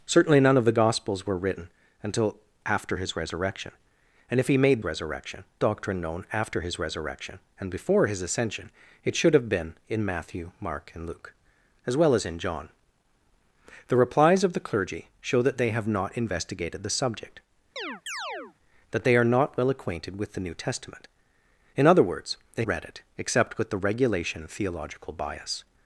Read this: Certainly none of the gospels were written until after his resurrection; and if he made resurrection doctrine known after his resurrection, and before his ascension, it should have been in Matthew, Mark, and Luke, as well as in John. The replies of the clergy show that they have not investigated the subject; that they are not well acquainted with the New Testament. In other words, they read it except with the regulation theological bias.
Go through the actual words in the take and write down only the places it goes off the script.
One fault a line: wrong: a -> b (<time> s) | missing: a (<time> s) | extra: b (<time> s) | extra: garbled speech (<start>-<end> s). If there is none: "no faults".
no faults